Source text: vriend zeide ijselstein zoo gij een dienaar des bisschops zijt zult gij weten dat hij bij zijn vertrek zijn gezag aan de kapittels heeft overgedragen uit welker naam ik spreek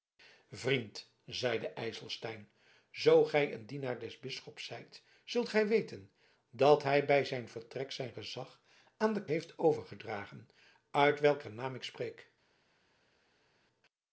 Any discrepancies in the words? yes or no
yes